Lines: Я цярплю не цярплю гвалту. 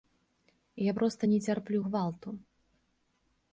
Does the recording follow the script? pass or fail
fail